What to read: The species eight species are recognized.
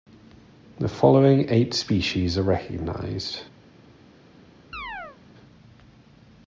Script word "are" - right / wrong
right